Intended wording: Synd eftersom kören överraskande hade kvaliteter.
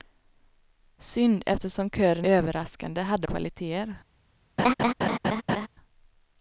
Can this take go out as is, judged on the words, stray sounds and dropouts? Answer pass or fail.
fail